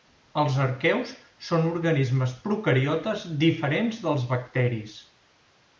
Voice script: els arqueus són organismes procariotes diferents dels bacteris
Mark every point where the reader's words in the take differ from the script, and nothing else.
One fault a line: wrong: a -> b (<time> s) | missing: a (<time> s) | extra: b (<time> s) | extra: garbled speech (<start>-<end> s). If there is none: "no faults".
no faults